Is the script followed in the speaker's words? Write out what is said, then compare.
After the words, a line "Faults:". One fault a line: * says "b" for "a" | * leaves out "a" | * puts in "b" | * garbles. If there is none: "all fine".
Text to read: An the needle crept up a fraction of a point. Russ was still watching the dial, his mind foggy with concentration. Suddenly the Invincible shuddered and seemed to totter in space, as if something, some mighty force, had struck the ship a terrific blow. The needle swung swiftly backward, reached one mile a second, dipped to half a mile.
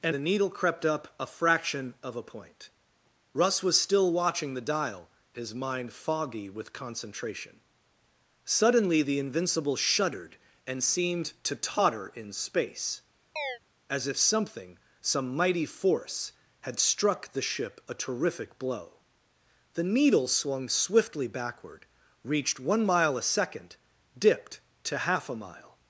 An the needle crept up a fraction of a point. Russ was still watching the dial, his mind foggy with concentration. Suddenly the Invincible shuddered and seemed to totter in space, as if something, some mighty force, had struck the ship a terrific blow. The needle swung swiftly backward, reached one mile a second, dipped to half a mile.
Faults:
all fine